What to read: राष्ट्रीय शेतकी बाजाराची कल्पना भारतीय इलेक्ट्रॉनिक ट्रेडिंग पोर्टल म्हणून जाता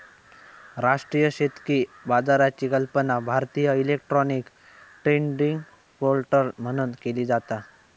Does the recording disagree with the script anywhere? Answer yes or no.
yes